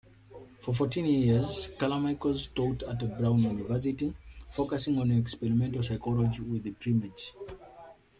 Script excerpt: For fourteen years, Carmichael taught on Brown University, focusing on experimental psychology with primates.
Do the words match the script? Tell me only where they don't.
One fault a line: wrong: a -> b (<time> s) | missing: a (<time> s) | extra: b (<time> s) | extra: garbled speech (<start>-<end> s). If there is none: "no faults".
wrong: on -> at (2.8 s)